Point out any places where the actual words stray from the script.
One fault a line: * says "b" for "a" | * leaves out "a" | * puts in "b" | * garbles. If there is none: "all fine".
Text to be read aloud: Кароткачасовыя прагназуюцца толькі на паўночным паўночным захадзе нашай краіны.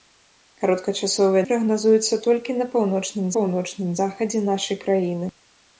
all fine